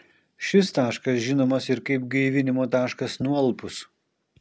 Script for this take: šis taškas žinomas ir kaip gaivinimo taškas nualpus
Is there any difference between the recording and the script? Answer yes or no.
no